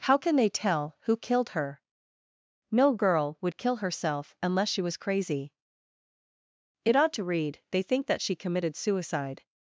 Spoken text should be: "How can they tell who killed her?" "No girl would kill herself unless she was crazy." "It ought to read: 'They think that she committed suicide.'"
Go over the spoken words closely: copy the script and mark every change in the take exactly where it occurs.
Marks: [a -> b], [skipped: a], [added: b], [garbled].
"How can they tell who killed her?" "No girl would kill herself unless she was crazy." "It ought to read: 'They think that she committed suicide.'"